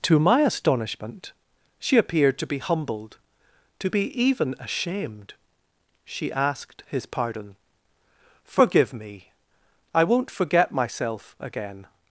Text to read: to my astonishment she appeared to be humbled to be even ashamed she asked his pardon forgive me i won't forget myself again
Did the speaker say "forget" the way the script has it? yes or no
yes